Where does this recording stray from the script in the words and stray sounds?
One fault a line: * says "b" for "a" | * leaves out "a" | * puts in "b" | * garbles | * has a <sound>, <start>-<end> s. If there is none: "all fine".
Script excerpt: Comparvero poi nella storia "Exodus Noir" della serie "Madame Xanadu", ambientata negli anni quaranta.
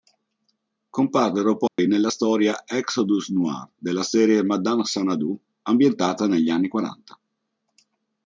* has a dropout, 1.7-1.8 s